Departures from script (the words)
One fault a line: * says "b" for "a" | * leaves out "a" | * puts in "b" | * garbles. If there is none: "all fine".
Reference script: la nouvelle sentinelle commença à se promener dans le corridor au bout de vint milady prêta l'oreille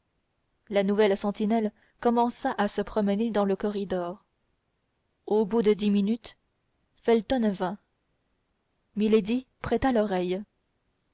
* puts in "dix minutes felton"